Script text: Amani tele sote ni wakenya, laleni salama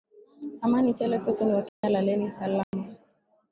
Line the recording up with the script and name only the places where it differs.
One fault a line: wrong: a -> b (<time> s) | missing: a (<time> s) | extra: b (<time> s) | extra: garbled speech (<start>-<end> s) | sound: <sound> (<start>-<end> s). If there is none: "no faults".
sound: dropout (1.7-1.8 s)
sound: dropout (2.6-2.7 s)